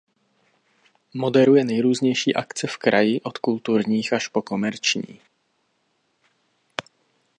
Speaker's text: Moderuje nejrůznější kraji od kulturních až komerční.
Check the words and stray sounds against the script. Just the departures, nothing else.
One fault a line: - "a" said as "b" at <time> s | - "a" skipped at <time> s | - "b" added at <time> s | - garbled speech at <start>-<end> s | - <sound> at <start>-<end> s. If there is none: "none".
- "akce v" added at 2.4 s
- "po" added at 4.3 s